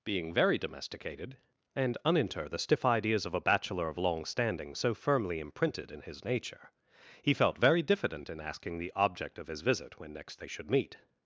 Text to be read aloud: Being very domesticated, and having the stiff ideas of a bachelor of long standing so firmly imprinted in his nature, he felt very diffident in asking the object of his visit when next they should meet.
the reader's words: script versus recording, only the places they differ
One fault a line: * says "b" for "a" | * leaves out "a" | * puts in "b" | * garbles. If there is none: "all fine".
* says "uninter" for "having"